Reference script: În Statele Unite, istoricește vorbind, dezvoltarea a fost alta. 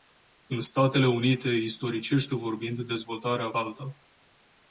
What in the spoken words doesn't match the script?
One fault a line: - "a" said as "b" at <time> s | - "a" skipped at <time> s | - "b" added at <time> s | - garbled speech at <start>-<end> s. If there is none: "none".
- "fost" skipped at 3.5 s